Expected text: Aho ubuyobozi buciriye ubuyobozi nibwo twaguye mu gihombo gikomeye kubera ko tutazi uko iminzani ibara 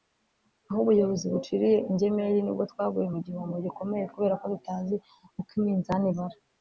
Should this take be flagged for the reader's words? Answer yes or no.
yes